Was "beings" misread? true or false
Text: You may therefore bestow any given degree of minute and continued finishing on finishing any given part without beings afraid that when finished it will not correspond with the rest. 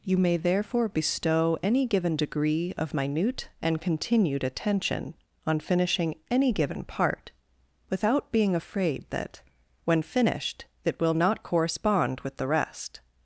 true